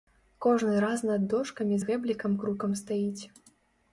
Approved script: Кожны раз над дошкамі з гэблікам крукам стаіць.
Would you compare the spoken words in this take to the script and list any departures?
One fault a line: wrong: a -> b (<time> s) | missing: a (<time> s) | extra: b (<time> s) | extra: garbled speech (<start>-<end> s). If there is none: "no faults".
no faults